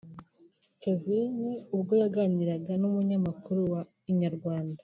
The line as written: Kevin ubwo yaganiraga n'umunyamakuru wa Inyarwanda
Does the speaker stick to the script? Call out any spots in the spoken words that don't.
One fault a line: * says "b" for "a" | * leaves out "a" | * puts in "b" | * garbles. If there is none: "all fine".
all fine